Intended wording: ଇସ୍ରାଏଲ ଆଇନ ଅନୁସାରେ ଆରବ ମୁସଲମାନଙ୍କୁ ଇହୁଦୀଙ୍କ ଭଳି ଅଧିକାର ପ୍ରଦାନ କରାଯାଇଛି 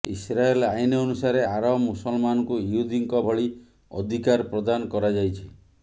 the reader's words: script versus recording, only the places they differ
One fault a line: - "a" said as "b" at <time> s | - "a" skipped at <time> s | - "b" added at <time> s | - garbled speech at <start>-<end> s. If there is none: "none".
none